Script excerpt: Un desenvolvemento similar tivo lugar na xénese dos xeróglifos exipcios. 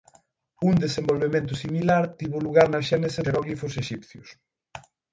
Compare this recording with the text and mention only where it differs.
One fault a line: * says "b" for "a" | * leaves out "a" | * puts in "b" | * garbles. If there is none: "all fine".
* leaves out "dos"